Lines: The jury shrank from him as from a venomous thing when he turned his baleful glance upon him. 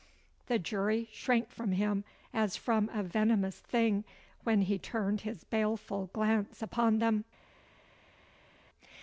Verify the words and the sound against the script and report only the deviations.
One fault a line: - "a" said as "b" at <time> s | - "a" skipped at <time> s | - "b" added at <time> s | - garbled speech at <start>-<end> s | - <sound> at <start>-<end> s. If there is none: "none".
- "him" said as "them" at 7.0 s